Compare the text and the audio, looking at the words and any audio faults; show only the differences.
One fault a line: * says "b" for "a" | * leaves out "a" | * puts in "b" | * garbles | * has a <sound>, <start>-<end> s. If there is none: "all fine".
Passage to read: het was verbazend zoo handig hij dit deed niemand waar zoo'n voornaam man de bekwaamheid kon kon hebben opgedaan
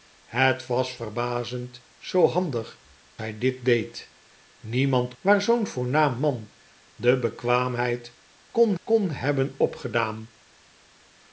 all fine